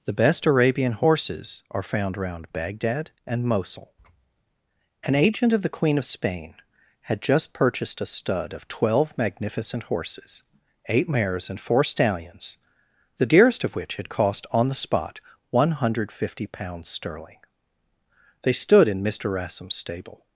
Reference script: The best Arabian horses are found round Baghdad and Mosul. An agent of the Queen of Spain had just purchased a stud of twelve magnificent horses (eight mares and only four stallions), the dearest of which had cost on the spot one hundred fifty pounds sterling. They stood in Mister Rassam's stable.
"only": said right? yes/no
no